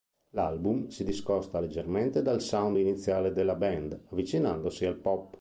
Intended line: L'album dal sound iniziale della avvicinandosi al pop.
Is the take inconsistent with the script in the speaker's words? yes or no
yes